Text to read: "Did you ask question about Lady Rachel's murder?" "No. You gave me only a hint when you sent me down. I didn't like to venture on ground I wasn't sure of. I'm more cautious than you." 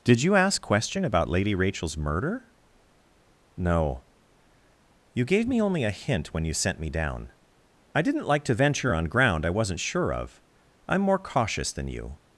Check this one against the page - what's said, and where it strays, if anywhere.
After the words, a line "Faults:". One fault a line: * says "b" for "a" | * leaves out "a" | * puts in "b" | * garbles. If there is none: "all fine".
"Did you ask question about Lady Rachel's murder?" "No. You gave me only a hint when you sent me down. I didn't like to venture on ground I wasn't sure of. I'm more cautious than you."
Faults:
all fine